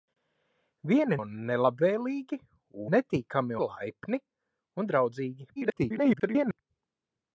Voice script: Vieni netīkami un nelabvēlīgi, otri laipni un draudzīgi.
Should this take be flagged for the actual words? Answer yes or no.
yes